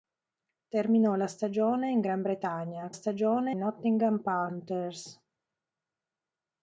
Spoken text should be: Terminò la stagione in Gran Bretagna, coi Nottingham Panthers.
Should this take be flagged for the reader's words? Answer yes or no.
yes